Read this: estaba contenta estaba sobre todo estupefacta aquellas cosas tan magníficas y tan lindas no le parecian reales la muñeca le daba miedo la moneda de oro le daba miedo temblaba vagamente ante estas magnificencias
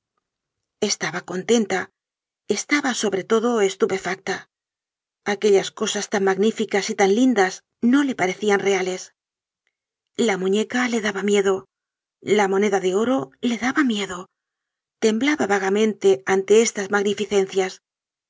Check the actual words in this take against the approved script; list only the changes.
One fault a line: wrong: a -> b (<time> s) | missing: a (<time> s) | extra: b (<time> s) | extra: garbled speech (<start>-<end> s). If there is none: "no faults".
no faults